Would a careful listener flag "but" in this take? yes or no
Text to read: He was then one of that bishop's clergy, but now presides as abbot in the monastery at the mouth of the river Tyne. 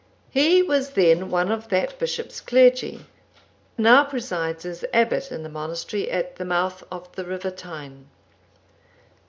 yes